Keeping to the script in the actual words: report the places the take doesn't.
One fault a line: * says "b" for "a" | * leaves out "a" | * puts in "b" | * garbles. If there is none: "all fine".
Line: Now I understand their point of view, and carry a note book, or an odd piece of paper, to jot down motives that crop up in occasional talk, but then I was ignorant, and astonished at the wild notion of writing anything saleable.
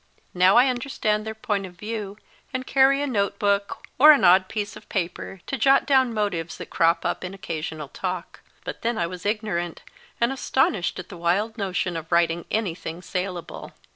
all fine